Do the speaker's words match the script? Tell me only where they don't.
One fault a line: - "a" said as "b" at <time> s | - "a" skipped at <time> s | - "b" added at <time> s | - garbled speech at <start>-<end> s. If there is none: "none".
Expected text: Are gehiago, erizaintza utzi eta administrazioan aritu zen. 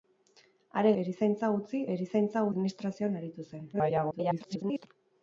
- "gehiago" skipped at 0.9 s
- "eta" said as "erizaintza" at 2.0 s
- garbled speech at 3.7-4.9 s